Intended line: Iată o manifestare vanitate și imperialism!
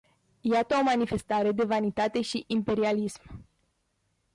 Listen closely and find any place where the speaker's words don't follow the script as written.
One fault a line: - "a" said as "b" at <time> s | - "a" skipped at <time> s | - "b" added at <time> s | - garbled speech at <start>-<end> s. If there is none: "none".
- "de" added at 1.5 s